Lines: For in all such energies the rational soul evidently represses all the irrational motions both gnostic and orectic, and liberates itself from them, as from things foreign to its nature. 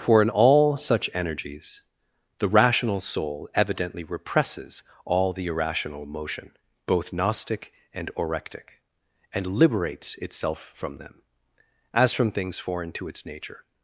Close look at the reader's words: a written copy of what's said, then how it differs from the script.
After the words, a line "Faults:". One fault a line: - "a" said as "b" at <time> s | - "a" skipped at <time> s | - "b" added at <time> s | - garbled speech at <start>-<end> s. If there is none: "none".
For in all such energies the rational soul evidently represses all the irrational motion both gnostic and orectic, and liberates itself from them, as from things foreign to its nature.
Faults:
- "motions" said as "motion" at 6.1 s